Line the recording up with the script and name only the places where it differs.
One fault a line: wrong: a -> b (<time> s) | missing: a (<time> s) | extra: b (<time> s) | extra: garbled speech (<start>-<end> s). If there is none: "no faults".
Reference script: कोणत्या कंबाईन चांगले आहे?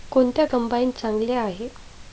no faults